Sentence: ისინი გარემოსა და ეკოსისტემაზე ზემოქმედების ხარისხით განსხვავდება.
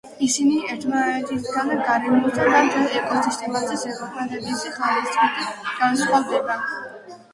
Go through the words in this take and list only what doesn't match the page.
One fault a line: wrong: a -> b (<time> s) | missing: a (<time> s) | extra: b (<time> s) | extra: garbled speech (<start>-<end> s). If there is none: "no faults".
extra: ერთმანეთისგან (0.8 s)
extra: მთელ (2.7 s)